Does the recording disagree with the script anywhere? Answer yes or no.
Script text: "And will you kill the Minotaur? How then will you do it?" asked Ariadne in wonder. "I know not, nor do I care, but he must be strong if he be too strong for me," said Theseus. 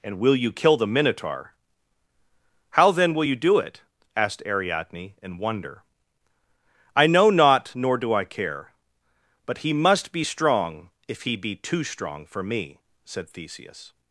no